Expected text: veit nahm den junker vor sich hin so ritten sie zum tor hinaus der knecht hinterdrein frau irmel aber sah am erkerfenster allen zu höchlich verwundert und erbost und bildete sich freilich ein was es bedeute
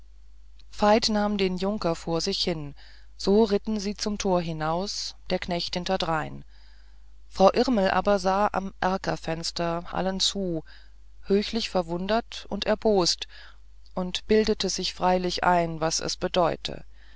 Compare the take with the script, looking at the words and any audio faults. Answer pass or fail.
pass